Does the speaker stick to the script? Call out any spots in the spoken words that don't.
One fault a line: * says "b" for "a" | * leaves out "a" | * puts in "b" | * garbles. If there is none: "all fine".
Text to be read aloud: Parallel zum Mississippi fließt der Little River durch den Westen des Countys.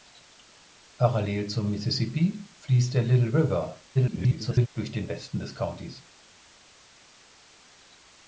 * garbles